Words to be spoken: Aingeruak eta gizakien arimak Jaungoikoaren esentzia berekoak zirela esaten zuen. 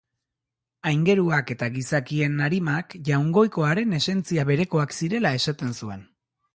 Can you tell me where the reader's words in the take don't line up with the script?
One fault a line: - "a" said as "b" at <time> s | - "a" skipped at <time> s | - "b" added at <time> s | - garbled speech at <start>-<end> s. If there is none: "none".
none